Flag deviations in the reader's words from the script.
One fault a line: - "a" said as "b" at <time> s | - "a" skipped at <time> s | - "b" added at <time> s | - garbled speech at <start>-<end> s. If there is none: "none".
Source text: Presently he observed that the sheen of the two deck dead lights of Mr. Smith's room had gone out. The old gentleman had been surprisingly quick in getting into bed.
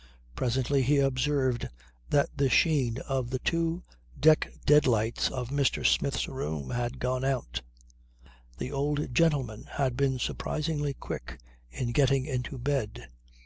none